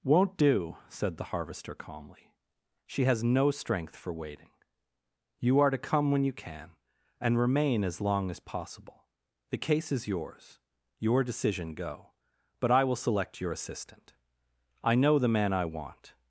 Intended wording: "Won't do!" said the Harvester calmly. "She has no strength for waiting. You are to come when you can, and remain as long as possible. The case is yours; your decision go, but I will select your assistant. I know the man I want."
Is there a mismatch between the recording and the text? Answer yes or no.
no